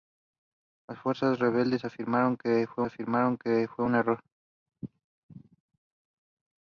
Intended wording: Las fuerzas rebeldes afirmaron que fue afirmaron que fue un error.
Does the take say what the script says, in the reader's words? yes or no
yes